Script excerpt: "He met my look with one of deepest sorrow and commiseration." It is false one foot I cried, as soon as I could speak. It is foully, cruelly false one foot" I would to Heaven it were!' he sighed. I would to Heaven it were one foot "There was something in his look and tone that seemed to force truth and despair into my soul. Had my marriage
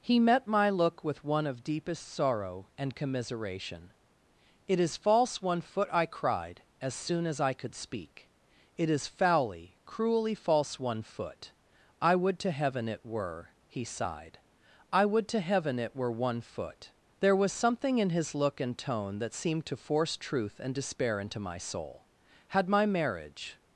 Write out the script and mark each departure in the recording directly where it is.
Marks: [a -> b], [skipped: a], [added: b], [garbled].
"He met my look with one of deepest sorrow and commiseration." It is false one foot I cried, as soon as I could speak. It is foully, cruelly false one foot" I would to Heaven it were!' he sighed. I would to Heaven it were one foot "There was something in his look and tone that seemed to force truth and despair into my soul. Had my marriage